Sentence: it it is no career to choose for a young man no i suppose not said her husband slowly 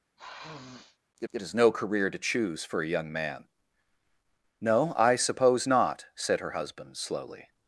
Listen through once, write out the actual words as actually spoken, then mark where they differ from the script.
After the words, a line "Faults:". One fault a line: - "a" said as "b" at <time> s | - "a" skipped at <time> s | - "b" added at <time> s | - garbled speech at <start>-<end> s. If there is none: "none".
it it is no career to choose for a young man no i suppose not said her husband slowly
Faults:
none